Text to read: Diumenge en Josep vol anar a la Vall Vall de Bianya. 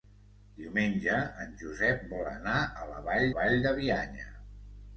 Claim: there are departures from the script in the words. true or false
false